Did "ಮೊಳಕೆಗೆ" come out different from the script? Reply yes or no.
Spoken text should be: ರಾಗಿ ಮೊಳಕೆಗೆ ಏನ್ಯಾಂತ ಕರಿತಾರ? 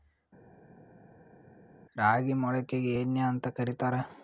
no